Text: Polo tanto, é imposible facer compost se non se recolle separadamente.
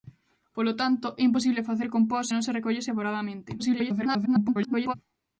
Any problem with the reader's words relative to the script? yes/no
yes